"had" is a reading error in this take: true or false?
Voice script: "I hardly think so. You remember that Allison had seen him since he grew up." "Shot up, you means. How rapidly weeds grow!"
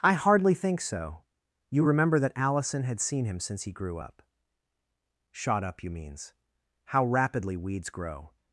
false